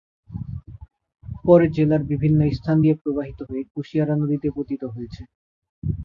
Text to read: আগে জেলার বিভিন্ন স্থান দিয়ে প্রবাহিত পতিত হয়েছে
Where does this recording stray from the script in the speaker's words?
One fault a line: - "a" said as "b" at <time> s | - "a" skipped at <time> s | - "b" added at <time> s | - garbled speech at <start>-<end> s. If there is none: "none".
- "আগে" said as "পরে" at 1.4 s
- "হয়ে কুশিয়ারা নদীতে" added at 3.5 s